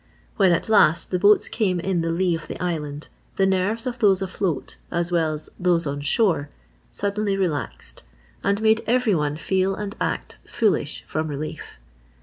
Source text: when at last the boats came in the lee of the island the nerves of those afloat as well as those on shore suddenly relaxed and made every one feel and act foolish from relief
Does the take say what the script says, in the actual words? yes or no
yes